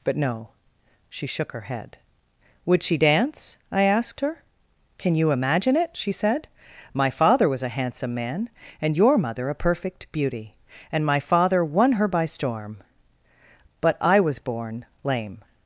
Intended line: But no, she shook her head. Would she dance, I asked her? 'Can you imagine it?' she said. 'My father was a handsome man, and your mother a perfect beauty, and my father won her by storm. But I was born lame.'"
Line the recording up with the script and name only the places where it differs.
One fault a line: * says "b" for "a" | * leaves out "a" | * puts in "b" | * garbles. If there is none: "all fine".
all fine